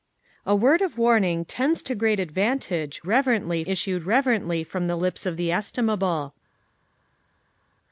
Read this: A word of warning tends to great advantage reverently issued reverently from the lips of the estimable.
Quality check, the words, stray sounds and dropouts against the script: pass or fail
pass